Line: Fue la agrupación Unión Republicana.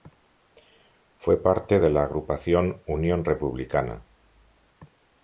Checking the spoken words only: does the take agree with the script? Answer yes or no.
no